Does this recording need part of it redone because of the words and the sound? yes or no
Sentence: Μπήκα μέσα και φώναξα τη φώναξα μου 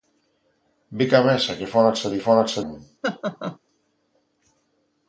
yes